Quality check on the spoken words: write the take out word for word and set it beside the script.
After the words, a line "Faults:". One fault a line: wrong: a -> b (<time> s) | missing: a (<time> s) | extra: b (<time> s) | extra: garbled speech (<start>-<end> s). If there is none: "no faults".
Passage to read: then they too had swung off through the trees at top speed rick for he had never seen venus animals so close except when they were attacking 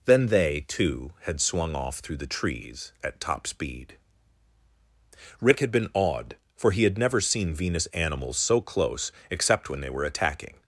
then they too had swung off through the trees at top speed rick had been awed for he had never seen venus animals so close except when they were attacking
Faults:
extra: had been awed (5.6 s)